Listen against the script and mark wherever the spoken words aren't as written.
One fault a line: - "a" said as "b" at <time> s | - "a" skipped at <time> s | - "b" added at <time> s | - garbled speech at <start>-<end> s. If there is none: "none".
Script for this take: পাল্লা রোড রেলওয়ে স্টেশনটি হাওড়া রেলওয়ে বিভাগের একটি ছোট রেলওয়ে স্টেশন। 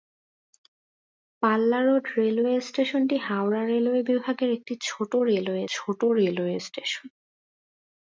- "ছোট রেলওয়ে" added at 5.7 s